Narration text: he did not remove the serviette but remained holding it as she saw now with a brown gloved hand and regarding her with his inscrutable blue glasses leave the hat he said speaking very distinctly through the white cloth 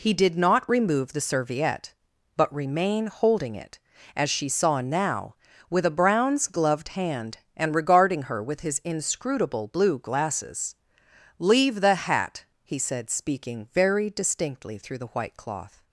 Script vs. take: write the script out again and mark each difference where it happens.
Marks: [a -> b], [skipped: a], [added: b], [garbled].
he did not remove the serviette but [remained -> remain] holding it as she saw now with a [brown -> browns] gloved hand and regarding her with his inscrutable blue glasses leave the hat he said speaking very distinctly through the white cloth